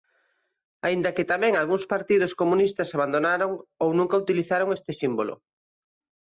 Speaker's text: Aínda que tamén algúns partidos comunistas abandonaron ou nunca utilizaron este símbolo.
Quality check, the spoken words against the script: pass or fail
pass